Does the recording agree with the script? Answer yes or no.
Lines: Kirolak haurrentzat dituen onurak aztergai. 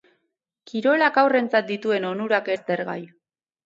yes